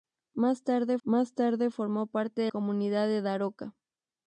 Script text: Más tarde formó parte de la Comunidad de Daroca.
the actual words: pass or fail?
fail